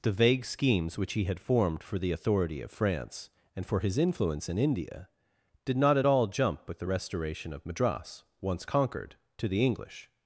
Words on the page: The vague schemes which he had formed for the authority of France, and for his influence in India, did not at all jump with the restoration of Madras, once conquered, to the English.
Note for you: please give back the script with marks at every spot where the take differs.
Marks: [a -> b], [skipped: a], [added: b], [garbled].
The vague schemes which he had formed for the authority of France, and for his influence in India, did not at all jump with the restoration of Madras, once conquered, to the English.